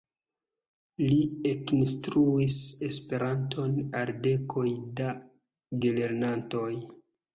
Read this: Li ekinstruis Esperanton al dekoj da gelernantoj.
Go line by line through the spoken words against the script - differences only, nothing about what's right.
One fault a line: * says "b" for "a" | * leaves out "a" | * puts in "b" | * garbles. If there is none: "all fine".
all fine